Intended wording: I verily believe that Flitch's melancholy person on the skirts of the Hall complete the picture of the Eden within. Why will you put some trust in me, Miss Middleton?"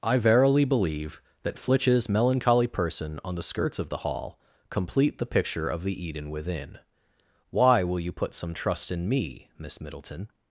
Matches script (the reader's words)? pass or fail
pass